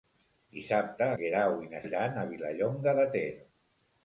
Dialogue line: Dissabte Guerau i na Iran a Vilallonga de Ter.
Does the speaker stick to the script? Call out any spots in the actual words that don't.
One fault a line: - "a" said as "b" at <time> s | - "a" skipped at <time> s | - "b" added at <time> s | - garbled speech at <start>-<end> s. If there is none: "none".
none